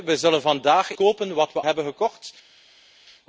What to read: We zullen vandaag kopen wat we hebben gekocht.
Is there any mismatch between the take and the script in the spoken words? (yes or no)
no